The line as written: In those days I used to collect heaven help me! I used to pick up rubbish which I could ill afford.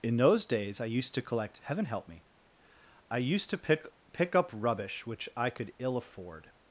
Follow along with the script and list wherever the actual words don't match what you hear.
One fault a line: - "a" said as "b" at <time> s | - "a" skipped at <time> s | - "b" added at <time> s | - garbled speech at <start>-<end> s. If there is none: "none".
- "pick" added at 4.1 s